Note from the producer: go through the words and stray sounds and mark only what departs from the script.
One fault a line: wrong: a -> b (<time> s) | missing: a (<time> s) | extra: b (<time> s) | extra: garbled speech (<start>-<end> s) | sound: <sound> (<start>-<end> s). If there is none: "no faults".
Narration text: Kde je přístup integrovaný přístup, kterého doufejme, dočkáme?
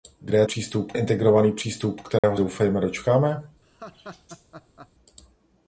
sound: dropout (2.2-2.2 s)
sound: laugh (3.6-4.9 s)